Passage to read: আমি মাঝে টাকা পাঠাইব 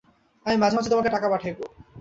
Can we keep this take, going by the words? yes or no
no